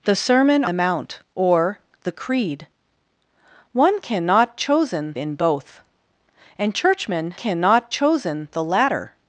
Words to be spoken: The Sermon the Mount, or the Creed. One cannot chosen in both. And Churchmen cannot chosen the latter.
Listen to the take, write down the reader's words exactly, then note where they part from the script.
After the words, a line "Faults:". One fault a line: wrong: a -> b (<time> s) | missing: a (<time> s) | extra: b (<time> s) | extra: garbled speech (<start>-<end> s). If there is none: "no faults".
The Sermon the Mount, or the Creed. One cannot chosen in both. And Churchmen cannot chosen the latter.
Faults:
no faults